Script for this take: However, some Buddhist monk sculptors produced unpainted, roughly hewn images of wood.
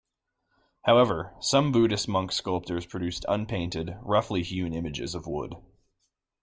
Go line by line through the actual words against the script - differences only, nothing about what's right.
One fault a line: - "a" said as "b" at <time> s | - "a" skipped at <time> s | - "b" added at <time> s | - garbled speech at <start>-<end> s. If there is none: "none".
none